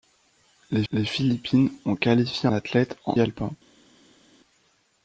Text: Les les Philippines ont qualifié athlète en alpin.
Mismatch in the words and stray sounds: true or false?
false